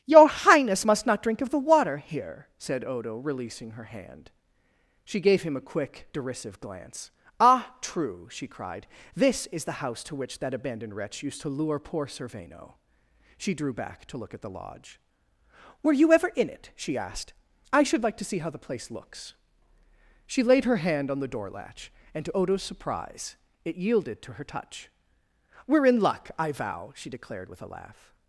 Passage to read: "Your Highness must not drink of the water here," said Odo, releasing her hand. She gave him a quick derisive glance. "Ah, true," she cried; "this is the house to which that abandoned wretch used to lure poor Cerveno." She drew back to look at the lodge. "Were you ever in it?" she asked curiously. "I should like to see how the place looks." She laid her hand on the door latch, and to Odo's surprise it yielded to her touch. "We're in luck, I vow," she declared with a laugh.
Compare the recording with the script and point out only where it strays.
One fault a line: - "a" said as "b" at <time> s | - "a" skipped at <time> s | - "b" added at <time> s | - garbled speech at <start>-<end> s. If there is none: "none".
- "curiously" skipped at 17.3 s